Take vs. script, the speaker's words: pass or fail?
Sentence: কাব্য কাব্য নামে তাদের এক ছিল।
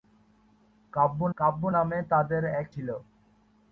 pass